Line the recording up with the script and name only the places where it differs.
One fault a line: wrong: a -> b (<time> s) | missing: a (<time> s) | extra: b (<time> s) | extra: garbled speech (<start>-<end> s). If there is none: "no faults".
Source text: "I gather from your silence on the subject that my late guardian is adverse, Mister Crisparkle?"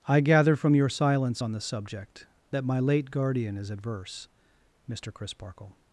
no faults